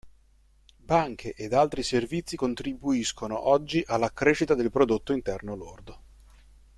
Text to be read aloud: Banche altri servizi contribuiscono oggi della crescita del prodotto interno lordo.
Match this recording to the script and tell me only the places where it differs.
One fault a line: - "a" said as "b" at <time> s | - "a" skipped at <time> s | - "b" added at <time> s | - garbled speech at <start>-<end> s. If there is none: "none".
- "ed" added at 1.4 s
- "della" said as "alla" at 3.8 s